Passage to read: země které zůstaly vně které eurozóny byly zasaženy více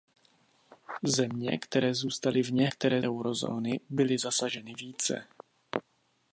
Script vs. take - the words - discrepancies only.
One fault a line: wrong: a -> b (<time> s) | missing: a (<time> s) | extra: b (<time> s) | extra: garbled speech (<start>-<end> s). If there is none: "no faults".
no faults